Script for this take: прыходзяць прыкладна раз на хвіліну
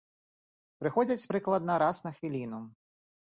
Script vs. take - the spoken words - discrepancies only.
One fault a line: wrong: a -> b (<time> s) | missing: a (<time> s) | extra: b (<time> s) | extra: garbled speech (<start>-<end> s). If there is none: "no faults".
no faults